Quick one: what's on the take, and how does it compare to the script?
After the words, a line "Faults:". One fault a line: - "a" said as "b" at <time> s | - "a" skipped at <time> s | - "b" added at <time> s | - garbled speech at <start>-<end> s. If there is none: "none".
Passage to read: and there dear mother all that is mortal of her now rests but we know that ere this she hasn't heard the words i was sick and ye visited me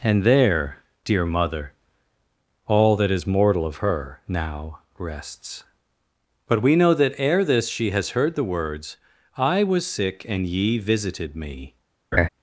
and there dear mother all that is mortal of her now rests but we know that ere this she has heard the words i was sick and ye visited me
Faults:
- "hasn't" said as "has" at 7.9 s